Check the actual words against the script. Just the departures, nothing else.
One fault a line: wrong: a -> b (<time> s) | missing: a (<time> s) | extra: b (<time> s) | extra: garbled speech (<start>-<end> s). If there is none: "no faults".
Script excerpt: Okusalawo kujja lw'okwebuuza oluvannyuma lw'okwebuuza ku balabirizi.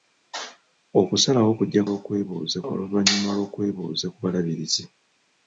no faults